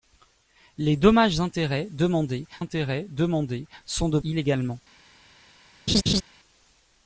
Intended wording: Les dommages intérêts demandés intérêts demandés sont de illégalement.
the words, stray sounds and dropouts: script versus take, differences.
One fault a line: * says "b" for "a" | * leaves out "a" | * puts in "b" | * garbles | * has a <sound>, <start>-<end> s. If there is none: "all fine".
* has a laugh, 5.9-6.2 s